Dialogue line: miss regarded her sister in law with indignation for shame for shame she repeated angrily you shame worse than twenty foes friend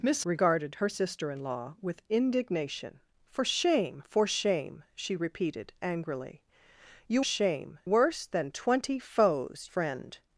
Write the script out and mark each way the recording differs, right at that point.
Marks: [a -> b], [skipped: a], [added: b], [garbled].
miss regarded her sister in law with indignation for shame for shame she repeated angrily you shame worse than twenty foes friend